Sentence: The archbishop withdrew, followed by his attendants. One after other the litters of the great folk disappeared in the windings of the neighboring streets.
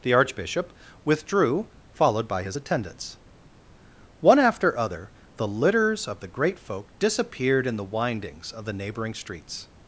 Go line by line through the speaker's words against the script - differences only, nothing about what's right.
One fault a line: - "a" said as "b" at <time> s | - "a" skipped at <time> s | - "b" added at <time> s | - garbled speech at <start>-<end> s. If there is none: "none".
none